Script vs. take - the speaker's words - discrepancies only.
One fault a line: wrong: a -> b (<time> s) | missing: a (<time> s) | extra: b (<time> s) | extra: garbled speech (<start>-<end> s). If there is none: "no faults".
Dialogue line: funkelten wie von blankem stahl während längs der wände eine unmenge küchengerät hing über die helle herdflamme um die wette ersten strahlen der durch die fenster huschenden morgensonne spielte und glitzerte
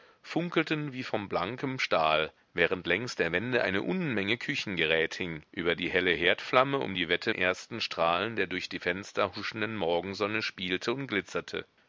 no faults